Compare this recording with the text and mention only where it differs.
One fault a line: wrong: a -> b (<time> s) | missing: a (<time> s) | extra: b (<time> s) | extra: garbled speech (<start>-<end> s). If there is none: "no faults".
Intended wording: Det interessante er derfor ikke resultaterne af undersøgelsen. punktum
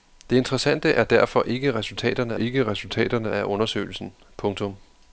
extra: ikke resultaterne (2.3 s)